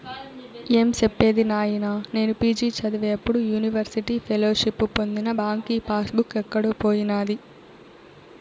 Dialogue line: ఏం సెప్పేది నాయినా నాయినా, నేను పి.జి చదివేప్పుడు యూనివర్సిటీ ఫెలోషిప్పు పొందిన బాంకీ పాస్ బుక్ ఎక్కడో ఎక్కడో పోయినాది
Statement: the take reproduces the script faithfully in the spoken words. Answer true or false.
false